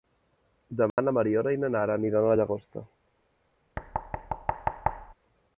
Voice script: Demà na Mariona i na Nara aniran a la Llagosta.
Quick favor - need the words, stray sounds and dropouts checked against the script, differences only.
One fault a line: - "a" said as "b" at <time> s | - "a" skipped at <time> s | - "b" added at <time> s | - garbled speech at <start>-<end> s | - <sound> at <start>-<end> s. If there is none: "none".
- dropout at 0.9-1.0 s
- thud at 3.8-5.1 s